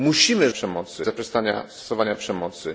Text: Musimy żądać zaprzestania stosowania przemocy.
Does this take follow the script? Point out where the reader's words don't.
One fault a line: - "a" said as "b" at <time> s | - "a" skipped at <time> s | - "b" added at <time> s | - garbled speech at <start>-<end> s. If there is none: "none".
- "żądać" said as "przemocy" at 0.5 s